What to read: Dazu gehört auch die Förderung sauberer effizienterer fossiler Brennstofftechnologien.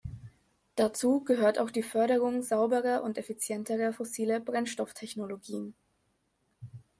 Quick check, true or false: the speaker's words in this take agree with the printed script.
false